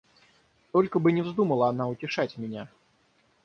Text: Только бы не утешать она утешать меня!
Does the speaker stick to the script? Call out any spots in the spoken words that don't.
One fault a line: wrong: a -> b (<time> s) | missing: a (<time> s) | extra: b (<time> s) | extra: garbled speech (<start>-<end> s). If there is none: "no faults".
wrong: утешать -> вздумала (1.2 s)